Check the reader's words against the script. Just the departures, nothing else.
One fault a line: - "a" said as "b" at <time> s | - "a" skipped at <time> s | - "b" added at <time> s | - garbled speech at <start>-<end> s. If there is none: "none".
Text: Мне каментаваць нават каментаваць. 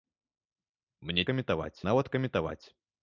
none